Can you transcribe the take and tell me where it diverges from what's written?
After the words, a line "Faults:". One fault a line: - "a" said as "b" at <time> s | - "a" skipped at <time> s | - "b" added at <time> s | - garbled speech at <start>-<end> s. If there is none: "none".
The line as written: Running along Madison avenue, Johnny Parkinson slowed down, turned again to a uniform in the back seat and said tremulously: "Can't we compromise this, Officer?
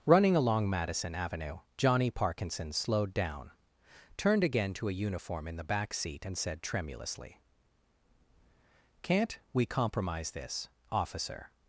Running along Madison avenue, Johnny Parkinson slowed down, turned again to a uniform in the back seat and said tremulously: "Can't we compromise this, Officer?
Faults:
none